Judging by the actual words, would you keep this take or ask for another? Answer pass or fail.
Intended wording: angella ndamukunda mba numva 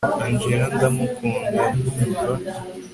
fail